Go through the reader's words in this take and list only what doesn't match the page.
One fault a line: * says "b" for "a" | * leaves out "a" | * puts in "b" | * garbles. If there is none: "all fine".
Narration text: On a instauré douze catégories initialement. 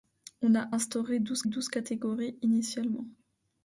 * puts in "douze"